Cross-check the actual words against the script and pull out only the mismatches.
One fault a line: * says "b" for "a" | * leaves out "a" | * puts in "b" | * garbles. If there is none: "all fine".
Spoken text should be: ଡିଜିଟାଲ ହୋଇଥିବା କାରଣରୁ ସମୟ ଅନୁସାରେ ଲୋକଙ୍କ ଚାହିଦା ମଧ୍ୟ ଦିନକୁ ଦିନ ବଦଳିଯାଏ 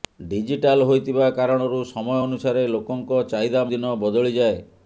* leaves out "ମଧ୍ୟ ଦିନକୁ"